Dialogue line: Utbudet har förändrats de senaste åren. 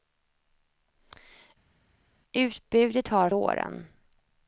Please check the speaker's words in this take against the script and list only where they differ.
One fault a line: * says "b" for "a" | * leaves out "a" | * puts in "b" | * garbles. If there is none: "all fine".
* leaves out "förändrats de senaste"